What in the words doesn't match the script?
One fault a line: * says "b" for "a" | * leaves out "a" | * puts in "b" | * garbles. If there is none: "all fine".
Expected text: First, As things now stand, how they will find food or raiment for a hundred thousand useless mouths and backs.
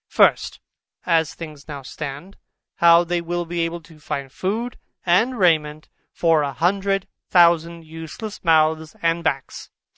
* puts in "be able to"
* says "and" for "or"